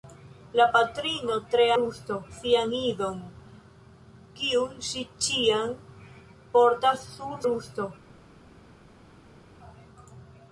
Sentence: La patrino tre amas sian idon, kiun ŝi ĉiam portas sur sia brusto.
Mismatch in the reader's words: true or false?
true